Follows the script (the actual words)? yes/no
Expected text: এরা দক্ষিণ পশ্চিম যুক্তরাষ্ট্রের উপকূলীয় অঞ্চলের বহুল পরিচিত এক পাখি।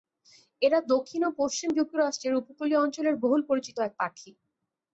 no